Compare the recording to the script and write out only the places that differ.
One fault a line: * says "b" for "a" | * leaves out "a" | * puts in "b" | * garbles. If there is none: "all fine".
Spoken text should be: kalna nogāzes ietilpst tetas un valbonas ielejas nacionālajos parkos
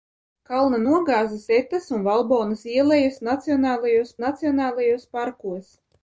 * leaves out "ietilpst"
* puts in "nacionālajos"